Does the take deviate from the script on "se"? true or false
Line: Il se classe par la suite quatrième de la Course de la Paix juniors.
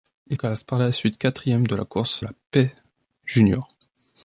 true